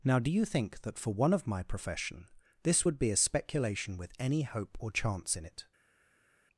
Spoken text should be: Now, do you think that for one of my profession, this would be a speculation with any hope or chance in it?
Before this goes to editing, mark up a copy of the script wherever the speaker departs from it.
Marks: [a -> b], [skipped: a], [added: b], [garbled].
Now, do you think that for one of my profession, this would be a speculation with any hope or chance in it?